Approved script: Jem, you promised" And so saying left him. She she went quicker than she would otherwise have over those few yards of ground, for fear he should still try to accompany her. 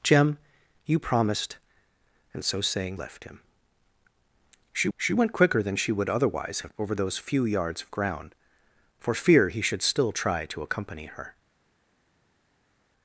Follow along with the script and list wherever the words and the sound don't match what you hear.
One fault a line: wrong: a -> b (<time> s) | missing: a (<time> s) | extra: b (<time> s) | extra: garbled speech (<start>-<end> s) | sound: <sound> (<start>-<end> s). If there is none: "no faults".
no faults